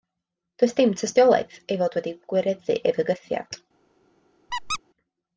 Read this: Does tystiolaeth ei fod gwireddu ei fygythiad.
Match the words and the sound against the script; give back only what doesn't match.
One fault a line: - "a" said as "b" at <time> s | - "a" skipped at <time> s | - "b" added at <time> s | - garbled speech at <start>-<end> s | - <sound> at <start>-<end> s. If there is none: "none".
- "dim" added at 0.8 s
- "wedi" added at 2.0 s
- squeak at 4.5-4.8 s